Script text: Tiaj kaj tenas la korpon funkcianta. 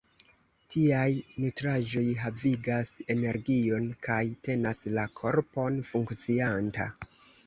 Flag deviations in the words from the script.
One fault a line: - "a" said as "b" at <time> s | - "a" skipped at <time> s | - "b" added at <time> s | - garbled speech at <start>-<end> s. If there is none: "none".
- "nutraĵoj havigas energion" added at 1.5 s